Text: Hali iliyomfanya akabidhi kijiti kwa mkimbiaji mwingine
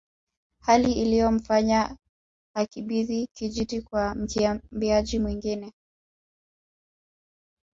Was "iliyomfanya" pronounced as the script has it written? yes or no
yes